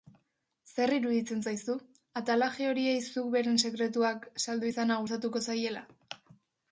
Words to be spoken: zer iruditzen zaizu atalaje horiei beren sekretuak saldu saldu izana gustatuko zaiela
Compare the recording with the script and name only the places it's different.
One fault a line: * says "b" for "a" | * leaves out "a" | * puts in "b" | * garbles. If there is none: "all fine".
* puts in "zuk"
* leaves out "saldu"